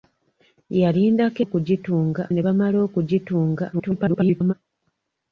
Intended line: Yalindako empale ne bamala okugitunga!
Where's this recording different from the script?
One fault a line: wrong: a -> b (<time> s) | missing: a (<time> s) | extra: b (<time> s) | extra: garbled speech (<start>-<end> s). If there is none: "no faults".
wrong: empale -> okugitunga (1.4 s)
extra: garbled speech (3.7-4.5 s)